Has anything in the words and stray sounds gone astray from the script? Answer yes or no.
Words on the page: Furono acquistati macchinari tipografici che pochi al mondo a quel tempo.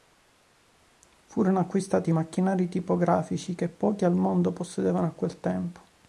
yes